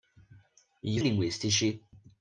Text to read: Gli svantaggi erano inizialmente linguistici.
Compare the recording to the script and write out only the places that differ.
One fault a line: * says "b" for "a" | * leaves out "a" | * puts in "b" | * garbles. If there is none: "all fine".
* leaves out "svantaggi erano inizialmente"